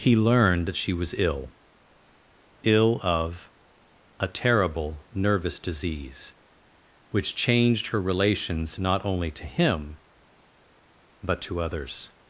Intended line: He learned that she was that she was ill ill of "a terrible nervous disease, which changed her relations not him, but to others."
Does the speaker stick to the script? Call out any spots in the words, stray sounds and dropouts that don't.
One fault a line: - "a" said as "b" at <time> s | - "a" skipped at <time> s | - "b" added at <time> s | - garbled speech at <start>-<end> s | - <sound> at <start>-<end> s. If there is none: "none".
- "that she was" skipped at 1.1 s
- "only to" added at 9.1 s